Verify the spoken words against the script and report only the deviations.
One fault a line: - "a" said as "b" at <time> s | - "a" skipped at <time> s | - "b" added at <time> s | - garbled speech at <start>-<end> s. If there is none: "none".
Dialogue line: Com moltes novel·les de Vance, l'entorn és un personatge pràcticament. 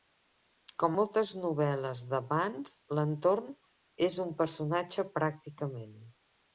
none